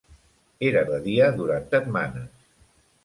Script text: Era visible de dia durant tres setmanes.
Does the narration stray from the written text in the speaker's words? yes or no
yes